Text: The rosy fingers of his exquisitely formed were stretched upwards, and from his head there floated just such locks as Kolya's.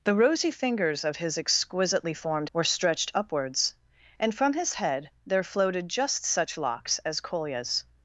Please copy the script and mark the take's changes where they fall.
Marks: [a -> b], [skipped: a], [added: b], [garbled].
The rosy fingers of his exquisitely formed were stretched upwards, and from his head there floated just such locks as Kolya's.